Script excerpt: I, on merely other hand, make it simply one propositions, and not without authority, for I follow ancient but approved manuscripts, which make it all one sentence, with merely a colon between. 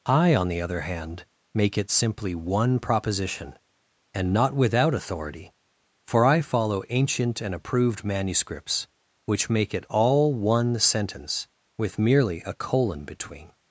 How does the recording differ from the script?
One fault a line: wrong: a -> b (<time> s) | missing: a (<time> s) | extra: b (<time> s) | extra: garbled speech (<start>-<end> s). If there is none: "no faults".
wrong: merely -> the (0.5 s)
wrong: propositions -> proposition (2.8 s)
wrong: but -> and (7.4 s)